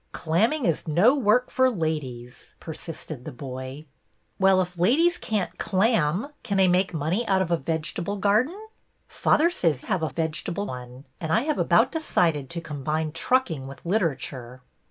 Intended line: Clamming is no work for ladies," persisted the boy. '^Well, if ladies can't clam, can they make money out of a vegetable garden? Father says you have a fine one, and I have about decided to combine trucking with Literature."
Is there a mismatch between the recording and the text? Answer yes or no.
yes